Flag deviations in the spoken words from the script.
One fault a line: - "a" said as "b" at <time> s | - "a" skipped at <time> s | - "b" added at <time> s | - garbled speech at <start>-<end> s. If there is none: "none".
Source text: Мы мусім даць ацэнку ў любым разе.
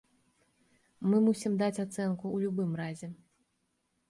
none